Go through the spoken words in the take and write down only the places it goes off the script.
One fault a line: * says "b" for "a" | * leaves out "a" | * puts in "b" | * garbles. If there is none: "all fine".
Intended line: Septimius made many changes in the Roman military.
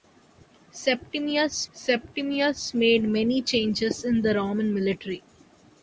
* puts in "septimius"